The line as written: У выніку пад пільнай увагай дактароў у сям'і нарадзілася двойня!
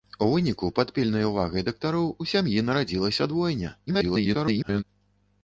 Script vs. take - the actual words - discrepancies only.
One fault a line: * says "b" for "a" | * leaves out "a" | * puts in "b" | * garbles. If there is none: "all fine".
* garbles